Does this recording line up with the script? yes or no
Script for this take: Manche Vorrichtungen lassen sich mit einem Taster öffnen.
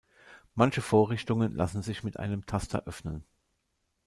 yes